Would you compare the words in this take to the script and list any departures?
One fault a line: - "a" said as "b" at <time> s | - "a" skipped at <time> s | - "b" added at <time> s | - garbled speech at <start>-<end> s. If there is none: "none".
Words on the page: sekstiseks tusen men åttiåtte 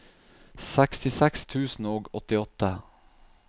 - "men" said as "og" at 1.9 s